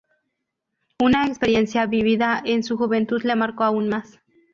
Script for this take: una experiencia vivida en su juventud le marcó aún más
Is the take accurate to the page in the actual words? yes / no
yes